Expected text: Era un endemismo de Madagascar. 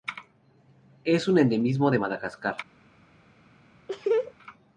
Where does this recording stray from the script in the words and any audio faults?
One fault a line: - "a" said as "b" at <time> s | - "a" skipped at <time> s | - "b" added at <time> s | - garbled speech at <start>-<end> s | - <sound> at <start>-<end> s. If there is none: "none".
- "Era" said as "Es" at 1.0 s
- laugh at 3.9-4.3 s